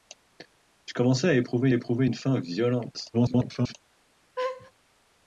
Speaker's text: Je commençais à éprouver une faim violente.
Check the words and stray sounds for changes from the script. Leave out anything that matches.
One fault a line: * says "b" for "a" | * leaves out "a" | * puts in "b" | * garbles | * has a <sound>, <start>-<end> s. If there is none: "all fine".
* puts in "éprouver"
* garbles
* has a laugh, 4.4-4.7 s